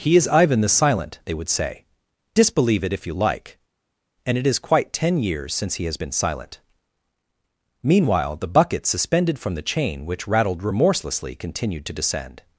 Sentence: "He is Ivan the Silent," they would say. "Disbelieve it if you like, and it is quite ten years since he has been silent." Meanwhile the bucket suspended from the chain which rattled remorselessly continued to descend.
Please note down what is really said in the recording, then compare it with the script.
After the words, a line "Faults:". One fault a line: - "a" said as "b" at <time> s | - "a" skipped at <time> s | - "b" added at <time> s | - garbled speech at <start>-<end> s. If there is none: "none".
"He is Ivan the Silent," they would say. "Disbelieve it if you like, and it is quite ten years since he has been silent." Meanwhile the bucket suspended from the chain which rattled remorselessly continued to descend.
Faults:
none